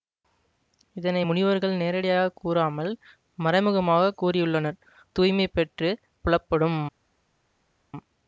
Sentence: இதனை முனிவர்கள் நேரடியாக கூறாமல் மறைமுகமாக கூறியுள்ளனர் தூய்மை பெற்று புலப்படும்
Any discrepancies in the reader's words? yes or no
no